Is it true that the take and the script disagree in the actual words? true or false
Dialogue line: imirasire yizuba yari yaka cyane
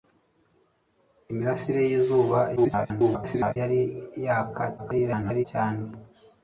true